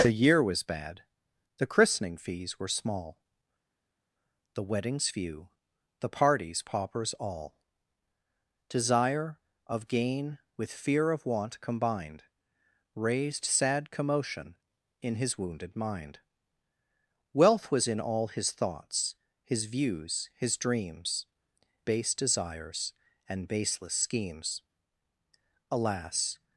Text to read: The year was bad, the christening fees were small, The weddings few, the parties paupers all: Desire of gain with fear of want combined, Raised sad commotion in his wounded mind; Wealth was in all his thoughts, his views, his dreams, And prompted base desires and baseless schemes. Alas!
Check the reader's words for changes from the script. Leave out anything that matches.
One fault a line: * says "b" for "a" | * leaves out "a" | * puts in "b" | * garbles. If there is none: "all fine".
* leaves out "And prompted"